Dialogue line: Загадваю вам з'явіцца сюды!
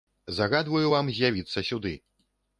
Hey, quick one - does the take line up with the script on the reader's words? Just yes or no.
yes